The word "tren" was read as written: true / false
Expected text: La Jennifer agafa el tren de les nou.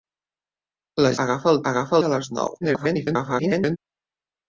false